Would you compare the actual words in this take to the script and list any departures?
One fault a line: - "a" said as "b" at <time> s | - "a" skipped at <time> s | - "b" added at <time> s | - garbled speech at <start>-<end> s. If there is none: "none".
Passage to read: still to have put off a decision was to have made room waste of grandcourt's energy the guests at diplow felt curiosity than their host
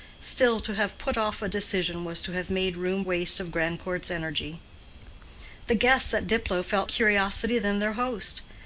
none